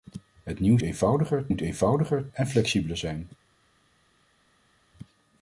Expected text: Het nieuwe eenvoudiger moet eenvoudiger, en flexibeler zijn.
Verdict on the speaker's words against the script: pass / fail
pass